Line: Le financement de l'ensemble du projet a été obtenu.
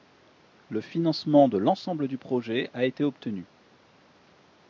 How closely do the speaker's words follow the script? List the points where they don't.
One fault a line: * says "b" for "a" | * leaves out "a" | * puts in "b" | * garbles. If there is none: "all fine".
all fine